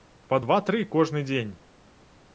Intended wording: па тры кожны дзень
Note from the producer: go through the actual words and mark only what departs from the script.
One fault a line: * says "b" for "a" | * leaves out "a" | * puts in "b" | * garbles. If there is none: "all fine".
* puts in "два"